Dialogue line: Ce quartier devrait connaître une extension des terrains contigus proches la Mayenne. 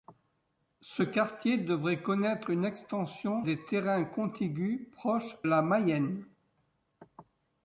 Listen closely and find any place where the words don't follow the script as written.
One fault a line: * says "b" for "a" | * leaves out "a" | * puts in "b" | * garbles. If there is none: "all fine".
all fine